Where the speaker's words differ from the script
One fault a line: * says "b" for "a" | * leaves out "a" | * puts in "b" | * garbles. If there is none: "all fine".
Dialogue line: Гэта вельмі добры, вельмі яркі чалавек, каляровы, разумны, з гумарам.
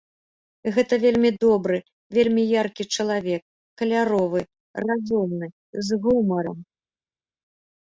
all fine